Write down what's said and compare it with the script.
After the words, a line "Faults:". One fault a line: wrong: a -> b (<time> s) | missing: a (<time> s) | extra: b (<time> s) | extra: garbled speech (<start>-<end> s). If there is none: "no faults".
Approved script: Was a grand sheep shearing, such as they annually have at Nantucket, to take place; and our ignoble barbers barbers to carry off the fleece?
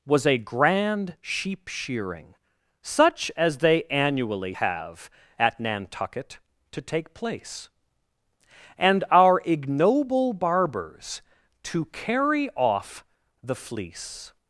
Was a grand sheep shearing, such as they annually have at Nantucket, to take place; and our ignoble barbers to carry off the fleece?
Faults:
missing: barbers (11.2 s)